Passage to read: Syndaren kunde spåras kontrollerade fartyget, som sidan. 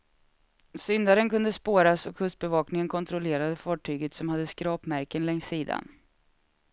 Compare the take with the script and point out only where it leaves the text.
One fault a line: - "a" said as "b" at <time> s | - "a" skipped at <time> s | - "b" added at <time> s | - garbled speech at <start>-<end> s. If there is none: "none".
- "och kustbevakningen" added at 2.0 s
- "hade skrapmärken längs" added at 4.3 s